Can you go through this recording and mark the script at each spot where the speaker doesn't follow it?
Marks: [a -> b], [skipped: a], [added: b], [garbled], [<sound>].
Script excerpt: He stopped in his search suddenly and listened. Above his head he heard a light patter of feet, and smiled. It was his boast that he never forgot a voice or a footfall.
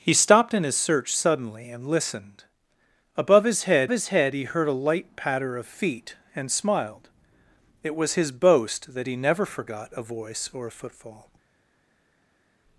He stopped in his search suddenly and listened. Above his head [added: his head] he heard a light patter of feet, and smiled. It was his boast that he never forgot a voice or a footfall.